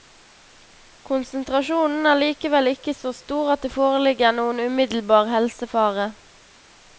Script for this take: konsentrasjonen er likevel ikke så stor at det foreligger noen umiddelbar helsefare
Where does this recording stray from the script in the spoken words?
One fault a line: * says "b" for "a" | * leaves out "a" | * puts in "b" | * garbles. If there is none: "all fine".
all fine